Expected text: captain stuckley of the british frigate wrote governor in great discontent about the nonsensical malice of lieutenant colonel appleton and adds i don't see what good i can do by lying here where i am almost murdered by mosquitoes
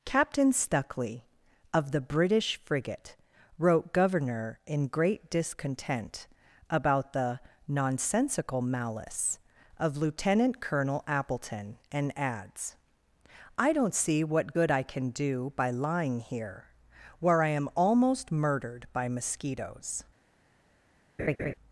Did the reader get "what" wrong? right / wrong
right